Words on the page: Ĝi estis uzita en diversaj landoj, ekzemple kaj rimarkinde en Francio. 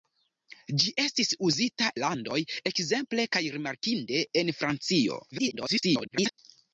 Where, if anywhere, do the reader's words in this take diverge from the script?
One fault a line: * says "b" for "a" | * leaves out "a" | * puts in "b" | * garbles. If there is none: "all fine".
* leaves out "en diversaj"
* garbles